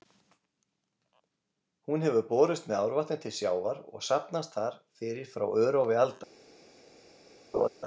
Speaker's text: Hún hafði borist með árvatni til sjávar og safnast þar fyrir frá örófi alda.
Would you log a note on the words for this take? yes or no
yes